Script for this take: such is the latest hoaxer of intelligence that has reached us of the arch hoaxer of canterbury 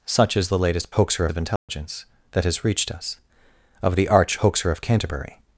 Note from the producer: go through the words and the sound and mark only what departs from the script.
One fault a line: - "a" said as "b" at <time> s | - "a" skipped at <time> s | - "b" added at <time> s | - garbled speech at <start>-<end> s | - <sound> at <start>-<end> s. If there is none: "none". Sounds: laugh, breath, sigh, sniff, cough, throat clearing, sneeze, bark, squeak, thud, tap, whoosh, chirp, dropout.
- dropout at 1.6-1.7 s